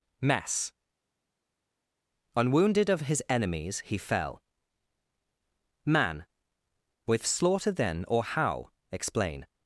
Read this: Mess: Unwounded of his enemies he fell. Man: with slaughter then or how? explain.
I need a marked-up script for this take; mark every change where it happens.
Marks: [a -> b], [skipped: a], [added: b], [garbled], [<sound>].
Mess: Unwounded of his enemies he fell. Man: with slaughter then or how? explain.